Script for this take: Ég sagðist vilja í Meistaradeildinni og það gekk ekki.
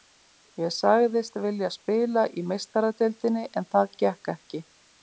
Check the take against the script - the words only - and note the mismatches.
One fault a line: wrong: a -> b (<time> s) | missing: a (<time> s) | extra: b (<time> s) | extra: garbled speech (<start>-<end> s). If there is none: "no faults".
extra: spila (1.8 s)
wrong: og -> en (3.6 s)